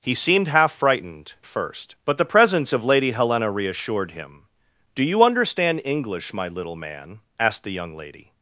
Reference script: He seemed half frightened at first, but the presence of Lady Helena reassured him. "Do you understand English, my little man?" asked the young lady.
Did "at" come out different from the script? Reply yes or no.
yes